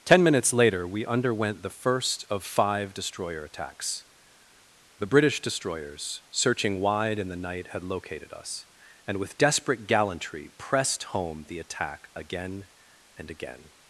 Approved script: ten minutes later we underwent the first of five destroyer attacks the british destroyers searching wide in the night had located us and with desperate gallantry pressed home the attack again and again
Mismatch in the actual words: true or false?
false